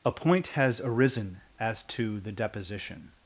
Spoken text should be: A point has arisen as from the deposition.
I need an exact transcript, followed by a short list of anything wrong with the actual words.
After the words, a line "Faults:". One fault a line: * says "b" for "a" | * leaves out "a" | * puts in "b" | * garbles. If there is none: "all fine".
A point has arisen as to the deposition.
Faults:
* says "to" for "from"